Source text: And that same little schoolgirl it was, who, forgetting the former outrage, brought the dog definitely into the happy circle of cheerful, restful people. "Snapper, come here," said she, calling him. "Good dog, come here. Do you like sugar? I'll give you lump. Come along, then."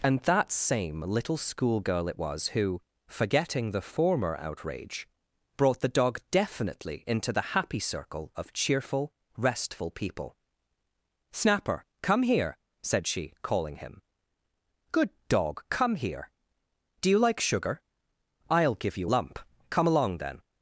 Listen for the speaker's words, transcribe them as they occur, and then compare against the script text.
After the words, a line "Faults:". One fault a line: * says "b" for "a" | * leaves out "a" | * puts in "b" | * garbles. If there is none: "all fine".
And that same little schoolgirl it was, who, forgetting the former outrage, brought the dog definitely into the happy circle of cheerful, restful people. "Snapper, come here," said she, calling him. "Good dog, come here. Do you like sugar? I'll give you lump. Come along, then."
Faults:
all fine